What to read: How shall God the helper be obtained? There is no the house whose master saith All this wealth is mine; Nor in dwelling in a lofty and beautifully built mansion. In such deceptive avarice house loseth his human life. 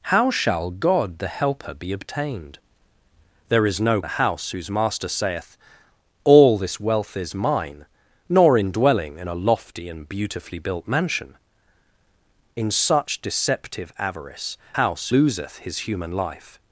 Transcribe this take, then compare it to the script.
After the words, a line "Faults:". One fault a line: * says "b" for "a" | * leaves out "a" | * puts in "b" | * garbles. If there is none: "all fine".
How shall God the helper be obtained? There is no the house whose master saith All this wealth is mine; Nor in dwelling in a lofty and beautifully built mansion. In such deceptive avarice house loseth his human life.
Faults:
all fine